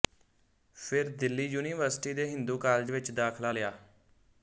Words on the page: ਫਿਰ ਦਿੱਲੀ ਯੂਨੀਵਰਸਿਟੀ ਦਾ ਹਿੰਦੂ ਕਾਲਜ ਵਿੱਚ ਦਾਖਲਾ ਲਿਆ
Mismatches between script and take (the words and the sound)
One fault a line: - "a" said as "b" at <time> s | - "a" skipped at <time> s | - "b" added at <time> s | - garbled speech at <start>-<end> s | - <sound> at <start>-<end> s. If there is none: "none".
- "ਦਾ" said as "ਦੇ" at 2.1 s